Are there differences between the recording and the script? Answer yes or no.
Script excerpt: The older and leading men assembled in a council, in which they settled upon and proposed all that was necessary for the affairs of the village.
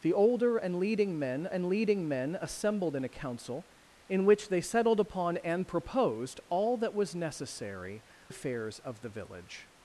yes